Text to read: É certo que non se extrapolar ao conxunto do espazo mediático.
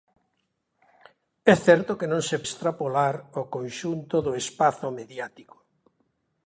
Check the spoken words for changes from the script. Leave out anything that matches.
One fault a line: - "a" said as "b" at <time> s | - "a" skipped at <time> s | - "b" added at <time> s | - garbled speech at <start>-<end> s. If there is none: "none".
none